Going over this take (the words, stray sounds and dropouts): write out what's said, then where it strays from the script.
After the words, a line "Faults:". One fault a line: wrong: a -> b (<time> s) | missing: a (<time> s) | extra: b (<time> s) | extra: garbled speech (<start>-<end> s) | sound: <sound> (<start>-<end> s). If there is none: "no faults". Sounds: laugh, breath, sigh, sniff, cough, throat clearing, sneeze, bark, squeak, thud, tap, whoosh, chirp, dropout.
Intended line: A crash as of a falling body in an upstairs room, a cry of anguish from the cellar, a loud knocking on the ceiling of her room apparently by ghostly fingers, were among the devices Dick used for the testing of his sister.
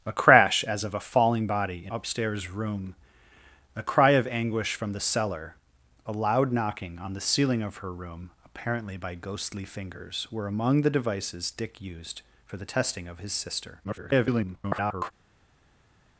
A crash as of a falling body in upstairs room, a cry of anguish from the cellar, a loud knocking on the ceiling of her room apparently by ghostly fingers, were among the devices Dick used for the testing of his sister. [garbled]
Faults:
missing: an (1.9 s)
extra: garbled speech (13.8-15.1 s)